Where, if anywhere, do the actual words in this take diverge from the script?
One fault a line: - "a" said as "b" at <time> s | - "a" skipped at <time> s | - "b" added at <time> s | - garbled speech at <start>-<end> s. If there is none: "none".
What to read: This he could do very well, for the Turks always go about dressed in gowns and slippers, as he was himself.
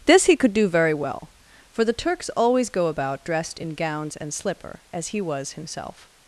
- "slippers" said as "slipper" at 4.3 s